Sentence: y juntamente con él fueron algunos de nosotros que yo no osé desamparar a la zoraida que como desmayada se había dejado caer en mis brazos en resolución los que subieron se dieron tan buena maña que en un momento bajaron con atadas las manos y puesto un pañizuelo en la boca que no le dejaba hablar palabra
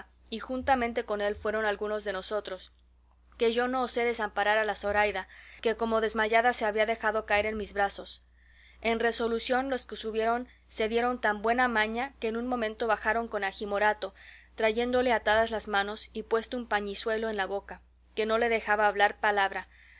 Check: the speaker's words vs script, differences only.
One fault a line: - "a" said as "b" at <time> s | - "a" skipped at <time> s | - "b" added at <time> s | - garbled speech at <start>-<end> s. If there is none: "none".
- "agi morato trayéndole" added at 13.4 s